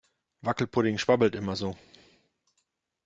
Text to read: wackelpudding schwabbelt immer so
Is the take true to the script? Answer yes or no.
yes